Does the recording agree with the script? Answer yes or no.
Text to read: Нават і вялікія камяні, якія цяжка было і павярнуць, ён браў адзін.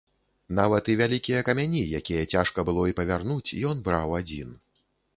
yes